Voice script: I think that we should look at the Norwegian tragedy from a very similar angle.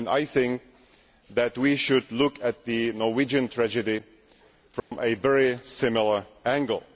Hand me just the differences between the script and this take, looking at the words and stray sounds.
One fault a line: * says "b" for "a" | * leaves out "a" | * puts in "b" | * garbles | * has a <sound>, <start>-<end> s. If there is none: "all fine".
* has a dropout, 4.8-4.9 s